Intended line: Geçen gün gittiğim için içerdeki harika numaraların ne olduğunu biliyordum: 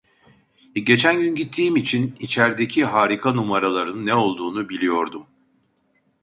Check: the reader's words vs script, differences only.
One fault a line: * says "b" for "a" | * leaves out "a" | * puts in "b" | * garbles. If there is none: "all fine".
all fine